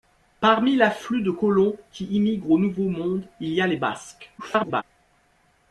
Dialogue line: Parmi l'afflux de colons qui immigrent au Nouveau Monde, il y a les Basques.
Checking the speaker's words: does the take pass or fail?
fail